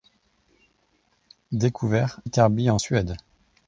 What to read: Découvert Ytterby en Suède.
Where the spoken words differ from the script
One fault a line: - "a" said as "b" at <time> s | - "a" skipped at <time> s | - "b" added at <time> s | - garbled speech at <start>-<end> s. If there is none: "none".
none